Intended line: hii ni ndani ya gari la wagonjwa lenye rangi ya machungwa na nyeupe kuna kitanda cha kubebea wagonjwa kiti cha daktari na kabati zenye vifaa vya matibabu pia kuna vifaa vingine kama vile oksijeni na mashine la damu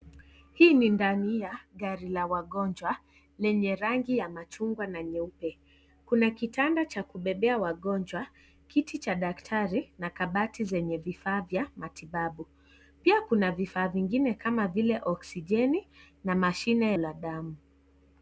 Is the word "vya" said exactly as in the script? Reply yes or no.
yes